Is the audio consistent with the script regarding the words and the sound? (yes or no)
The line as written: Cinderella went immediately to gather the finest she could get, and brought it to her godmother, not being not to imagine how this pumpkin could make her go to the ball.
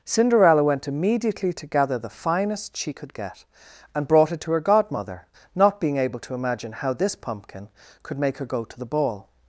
no